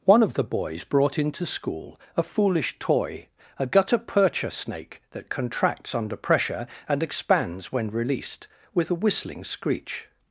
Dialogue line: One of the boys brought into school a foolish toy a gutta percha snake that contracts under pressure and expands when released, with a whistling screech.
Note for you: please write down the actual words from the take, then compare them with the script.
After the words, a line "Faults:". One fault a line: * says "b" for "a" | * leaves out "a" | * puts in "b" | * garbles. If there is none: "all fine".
One of the boys brought into school a foolish toy a gutta percha snake that contracts under pressure and expands when released, with a whistling screech.
Faults:
all fine